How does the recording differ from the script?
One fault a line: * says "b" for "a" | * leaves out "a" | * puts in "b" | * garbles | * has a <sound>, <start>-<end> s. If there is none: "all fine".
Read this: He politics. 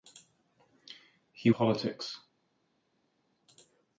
all fine